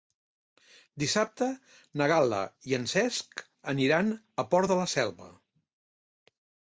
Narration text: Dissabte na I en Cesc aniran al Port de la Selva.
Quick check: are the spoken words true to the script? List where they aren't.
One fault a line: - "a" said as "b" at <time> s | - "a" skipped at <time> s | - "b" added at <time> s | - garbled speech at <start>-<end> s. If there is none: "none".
- "Gal·la" added at 2.1 s